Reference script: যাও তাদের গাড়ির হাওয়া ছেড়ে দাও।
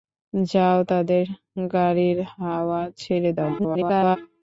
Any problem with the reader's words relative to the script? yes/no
yes